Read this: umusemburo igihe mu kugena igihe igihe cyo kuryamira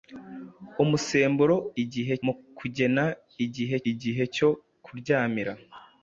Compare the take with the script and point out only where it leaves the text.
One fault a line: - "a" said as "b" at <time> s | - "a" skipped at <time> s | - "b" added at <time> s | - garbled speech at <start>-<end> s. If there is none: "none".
none